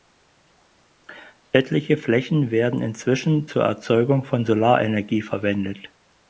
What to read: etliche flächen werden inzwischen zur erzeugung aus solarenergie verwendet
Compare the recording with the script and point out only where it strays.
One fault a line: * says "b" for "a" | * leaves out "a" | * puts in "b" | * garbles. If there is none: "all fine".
* says "von" for "aus"